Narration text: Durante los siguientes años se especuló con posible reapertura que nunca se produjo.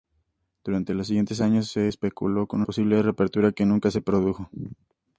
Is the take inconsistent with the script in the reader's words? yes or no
no